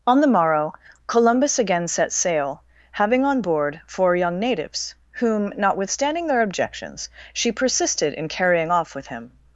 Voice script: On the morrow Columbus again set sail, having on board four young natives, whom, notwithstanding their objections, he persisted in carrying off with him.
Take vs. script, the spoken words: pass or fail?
fail